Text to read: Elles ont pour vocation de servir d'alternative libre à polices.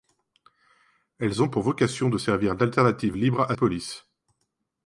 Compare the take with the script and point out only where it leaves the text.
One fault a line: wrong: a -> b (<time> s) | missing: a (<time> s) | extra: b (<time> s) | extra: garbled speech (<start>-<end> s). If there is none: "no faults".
no faults